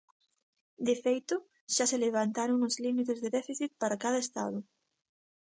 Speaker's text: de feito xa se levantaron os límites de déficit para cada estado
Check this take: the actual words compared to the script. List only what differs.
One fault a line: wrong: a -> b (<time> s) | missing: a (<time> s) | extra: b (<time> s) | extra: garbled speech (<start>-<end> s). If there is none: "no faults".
no faults